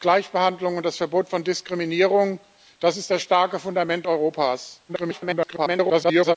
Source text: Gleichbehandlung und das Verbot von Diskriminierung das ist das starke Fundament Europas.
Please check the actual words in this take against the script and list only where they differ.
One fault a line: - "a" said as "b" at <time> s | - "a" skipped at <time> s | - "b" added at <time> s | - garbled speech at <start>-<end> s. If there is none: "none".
- garbled speech at 4.9-6.4 s